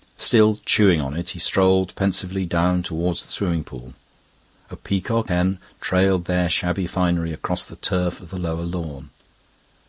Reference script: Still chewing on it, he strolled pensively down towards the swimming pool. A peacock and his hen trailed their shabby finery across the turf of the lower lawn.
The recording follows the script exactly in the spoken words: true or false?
false